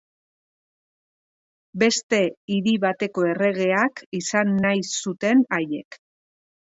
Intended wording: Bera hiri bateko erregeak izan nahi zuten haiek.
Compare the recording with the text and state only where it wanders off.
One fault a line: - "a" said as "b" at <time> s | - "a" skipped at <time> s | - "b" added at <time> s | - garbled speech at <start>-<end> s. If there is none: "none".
- "Bera" said as "Beste" at 1.8 s